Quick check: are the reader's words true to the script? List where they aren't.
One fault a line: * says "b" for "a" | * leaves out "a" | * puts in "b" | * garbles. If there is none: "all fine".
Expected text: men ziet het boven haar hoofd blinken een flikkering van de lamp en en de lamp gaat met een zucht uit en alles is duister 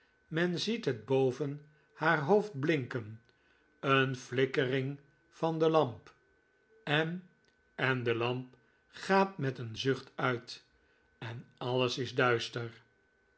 all fine